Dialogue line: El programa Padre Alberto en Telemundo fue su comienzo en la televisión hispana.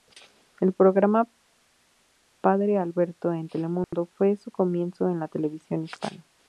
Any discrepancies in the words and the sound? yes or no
yes